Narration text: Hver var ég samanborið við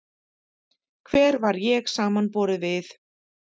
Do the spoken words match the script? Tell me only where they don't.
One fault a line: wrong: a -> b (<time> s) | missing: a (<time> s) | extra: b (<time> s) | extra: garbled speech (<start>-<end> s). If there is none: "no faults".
no faults